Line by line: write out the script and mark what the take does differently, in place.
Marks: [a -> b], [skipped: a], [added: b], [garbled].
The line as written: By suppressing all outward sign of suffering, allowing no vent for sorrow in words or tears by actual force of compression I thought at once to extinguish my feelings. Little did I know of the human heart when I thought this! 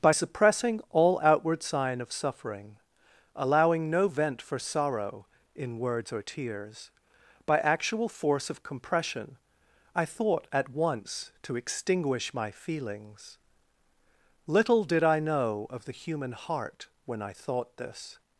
By suppressing all outward sign of suffering, allowing no vent for sorrow in words or tears by actual force of compression I thought at once to extinguish my feelings. Little did I know of the human heart when I thought this!